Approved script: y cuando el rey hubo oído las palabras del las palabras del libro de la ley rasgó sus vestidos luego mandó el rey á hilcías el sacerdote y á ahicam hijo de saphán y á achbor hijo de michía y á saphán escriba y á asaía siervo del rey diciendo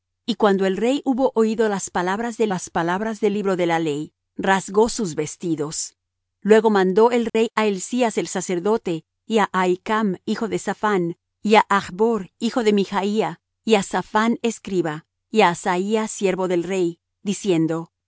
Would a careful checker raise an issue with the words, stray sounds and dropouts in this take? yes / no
yes